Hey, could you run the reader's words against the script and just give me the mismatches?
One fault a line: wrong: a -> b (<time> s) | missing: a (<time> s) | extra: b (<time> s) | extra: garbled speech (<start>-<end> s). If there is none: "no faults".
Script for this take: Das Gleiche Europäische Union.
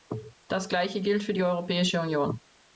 extra: gilt für die (1.0 s)